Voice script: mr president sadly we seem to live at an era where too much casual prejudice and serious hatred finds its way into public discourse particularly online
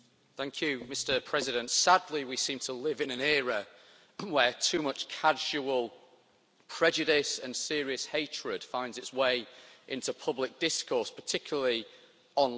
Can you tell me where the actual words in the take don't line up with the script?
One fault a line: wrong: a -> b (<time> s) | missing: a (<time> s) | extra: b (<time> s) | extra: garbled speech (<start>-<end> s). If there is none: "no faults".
wrong: at -> in (3.0 s)